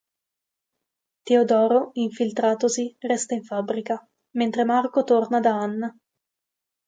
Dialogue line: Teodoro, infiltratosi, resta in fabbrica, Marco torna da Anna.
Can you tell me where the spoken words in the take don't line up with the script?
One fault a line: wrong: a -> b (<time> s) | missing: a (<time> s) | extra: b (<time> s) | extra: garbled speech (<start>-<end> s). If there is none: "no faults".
extra: mentre (4.4 s)